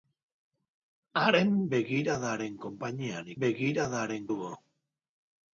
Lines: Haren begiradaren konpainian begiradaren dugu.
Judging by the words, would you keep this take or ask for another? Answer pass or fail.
pass